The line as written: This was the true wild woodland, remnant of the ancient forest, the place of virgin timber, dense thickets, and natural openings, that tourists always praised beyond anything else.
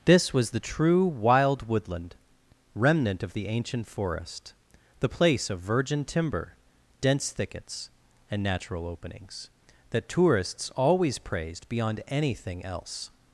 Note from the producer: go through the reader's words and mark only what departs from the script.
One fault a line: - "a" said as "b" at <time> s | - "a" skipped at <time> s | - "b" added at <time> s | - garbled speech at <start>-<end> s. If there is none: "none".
none